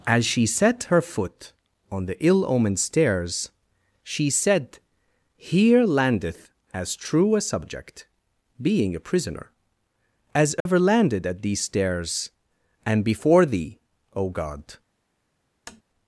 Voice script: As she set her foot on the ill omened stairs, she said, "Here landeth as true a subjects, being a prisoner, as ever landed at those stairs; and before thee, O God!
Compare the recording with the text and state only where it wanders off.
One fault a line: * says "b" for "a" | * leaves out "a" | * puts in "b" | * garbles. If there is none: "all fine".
* says "subject" for "subjects"
* says "these" for "those"